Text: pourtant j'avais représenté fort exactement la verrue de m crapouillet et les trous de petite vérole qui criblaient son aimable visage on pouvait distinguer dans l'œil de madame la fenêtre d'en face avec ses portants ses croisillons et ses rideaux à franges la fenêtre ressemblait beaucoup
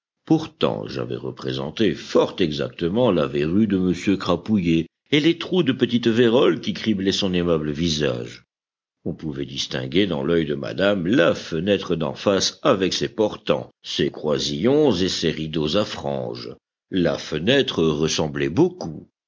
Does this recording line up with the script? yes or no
yes